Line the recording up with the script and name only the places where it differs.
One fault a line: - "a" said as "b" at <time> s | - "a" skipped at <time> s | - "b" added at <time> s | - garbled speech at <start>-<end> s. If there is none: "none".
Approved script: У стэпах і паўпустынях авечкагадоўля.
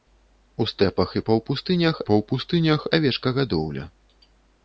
- "паўпустынях" added at 2.1 s